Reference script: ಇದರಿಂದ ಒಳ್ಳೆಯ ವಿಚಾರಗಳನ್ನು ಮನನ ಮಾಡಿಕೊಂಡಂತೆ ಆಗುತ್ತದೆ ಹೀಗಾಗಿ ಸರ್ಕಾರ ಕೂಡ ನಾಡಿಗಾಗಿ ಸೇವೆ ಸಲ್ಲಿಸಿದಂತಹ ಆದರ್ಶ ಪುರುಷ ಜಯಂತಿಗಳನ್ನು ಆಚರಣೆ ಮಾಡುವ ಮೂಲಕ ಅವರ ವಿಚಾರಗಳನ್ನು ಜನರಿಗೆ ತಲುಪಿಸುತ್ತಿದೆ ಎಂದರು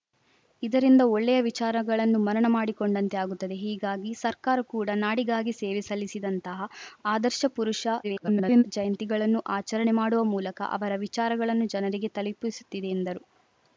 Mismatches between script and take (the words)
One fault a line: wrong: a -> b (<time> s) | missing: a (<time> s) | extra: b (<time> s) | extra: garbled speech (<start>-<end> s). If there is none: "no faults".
extra: garbled speech (8.0-8.6 s)